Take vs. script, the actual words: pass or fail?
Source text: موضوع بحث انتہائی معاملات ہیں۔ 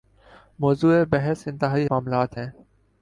pass